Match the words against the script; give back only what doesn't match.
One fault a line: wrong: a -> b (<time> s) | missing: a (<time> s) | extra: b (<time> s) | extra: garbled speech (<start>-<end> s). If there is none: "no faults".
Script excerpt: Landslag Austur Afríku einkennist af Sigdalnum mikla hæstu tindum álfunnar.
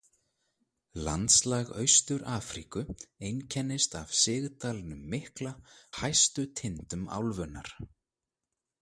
no faults